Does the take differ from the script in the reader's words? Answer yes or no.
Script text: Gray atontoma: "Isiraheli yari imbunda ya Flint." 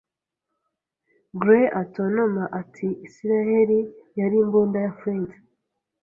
yes